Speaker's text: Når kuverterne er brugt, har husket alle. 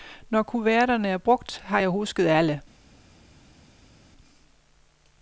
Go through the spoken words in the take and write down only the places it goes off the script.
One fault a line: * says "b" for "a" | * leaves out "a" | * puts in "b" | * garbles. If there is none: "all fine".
* puts in "jeg"